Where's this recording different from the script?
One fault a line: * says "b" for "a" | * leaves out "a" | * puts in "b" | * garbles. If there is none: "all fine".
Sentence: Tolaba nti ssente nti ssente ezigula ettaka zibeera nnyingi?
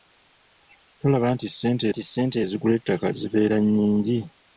all fine